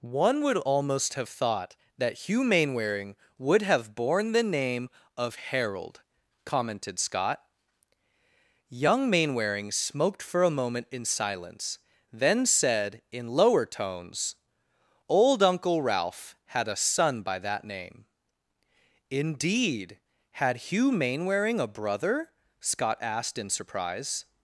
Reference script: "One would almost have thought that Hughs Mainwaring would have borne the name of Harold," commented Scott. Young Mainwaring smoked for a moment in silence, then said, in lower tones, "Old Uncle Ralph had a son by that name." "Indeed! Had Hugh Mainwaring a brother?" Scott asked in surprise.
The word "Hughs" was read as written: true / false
false